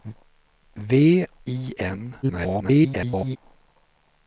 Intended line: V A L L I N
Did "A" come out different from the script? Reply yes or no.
yes